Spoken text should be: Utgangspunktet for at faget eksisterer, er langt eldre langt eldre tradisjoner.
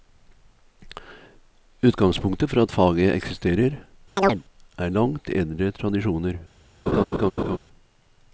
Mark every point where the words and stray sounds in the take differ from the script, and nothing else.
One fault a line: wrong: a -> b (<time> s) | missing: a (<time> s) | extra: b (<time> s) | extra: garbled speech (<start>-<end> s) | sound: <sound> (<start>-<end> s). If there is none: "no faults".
sound: chirp (4.2-4.4 s)
missing: langt eldre (5.7 s)
sound: laugh (6.9-7.6 s)